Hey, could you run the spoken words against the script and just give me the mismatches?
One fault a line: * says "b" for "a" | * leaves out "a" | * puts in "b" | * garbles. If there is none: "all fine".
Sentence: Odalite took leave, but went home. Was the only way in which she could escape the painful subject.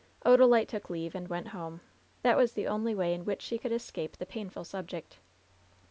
* says "and" for "but"
* puts in "That"